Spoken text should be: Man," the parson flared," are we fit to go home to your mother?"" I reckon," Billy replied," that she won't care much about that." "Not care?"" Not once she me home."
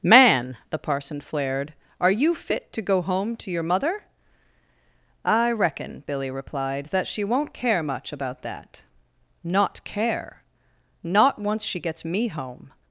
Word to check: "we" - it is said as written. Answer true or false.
false